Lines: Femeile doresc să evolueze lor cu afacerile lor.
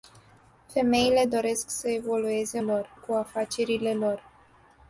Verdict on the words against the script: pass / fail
pass